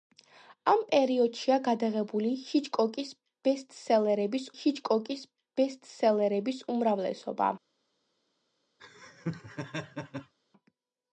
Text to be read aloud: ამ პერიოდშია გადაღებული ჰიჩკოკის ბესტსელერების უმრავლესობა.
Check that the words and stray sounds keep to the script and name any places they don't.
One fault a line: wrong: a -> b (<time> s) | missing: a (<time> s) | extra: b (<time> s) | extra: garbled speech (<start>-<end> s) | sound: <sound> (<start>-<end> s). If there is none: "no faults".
extra: ჰიჩკოკის ბესტსელერების (4.6 s)
sound: laugh (8.8-10.3 s)